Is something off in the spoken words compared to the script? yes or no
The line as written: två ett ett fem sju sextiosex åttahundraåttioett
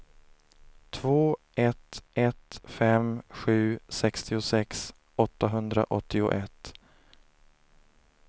no